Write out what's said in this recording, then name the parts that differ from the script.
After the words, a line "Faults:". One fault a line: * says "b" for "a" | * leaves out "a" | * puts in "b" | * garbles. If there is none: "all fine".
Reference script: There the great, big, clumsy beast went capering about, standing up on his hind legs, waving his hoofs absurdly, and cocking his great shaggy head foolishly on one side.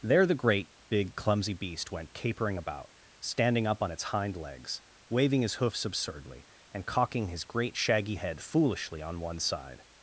There the great, big, clumsy beast went capering about, standing up on its hind legs, waving his hoofs absurdly, and cocking his great shaggy head foolishly on one side.
Faults:
* says "its" for "his"